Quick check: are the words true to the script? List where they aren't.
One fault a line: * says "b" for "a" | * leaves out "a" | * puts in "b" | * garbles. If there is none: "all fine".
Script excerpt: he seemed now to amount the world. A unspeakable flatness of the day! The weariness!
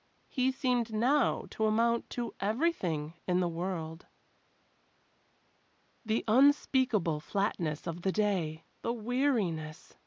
* puts in "to everything in"
* says "The" for "A"